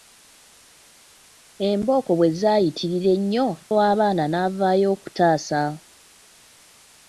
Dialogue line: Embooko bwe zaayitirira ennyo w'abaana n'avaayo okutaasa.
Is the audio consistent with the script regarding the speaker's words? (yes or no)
yes